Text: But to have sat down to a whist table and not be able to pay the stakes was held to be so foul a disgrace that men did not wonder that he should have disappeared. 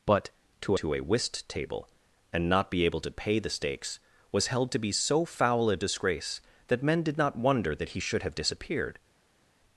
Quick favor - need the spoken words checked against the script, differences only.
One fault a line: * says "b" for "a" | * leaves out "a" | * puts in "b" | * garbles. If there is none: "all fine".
* leaves out "have sat down"